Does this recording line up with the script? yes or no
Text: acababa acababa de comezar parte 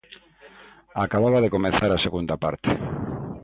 no